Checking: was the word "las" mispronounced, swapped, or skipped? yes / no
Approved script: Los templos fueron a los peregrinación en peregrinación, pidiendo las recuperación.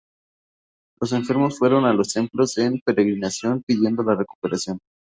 yes